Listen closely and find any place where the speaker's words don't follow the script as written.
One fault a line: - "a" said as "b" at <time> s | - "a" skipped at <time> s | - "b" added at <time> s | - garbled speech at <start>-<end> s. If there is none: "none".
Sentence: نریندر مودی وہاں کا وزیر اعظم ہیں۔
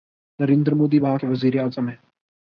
- "کا" said as "کے" at 1.1 s